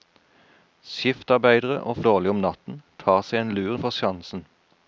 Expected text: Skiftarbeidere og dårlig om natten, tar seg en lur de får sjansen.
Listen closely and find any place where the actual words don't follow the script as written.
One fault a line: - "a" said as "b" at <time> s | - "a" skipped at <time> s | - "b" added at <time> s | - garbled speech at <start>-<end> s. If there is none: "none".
none